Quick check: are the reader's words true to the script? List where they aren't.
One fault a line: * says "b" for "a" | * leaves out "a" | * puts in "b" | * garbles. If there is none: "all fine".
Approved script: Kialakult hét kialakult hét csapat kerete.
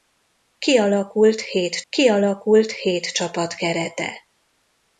all fine